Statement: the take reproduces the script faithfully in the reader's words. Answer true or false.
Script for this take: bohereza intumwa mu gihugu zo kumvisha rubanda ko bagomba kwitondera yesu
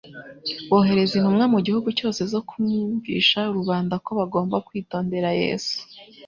false